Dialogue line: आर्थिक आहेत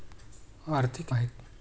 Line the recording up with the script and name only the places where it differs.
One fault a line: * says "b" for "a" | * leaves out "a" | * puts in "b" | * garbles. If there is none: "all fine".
all fine